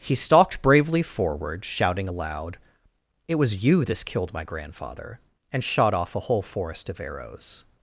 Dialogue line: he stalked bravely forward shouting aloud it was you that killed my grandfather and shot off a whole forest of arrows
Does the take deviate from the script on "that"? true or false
true